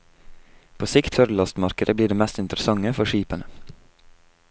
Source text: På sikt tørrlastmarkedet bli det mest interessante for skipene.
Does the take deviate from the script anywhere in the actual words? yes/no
no